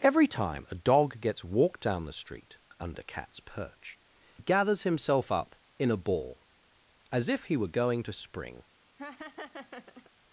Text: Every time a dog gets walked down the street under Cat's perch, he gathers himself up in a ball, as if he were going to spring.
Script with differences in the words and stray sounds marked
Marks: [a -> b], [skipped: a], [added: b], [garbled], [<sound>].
Every time a dog gets walked down the street under Cat's perch, [skipped: he] gathers himself up in a ball, as if he were going to spring. [laugh]